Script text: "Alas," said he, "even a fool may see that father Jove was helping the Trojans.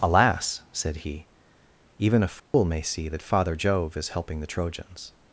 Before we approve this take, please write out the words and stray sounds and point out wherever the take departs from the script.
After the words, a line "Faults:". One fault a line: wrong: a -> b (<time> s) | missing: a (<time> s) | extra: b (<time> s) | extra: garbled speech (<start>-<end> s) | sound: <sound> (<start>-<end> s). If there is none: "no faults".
"Alas," said he, "even a fool may see that father Jove is helping the Trojans.
Faults:
sound: dropout (2.4-2.5 s)
wrong: was -> is (4.0 s)